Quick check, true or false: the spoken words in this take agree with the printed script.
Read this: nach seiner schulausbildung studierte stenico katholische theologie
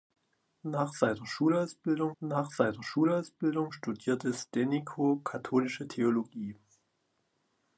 false